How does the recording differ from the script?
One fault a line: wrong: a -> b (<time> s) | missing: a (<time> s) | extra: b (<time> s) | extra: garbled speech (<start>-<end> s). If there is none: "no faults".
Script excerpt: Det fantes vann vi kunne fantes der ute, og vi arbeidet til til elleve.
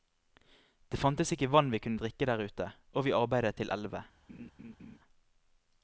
extra: ikke (1.4 s)
wrong: fantes -> drikke (2.0 s)
missing: til (3.7 s)